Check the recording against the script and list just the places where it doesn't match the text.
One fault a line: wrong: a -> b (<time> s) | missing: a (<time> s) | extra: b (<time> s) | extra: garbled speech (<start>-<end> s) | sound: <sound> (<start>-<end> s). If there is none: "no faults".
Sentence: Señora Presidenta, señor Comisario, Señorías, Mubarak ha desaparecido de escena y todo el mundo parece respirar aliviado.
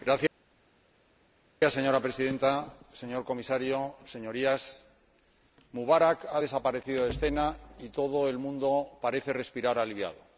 no faults